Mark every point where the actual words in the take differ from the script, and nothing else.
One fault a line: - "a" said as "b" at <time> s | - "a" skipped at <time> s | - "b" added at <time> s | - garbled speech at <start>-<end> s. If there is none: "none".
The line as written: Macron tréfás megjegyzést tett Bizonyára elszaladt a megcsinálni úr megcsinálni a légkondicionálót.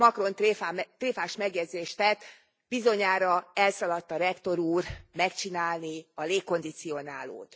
- "megcsinálni" said as "rektor" at 4.2 s